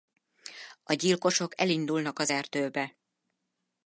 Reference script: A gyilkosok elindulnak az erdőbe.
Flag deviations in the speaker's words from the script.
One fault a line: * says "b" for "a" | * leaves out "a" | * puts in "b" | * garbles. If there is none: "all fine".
all fine